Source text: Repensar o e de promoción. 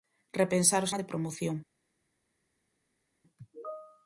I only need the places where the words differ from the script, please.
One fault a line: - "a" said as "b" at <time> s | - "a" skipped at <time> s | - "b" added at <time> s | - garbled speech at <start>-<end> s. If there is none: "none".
none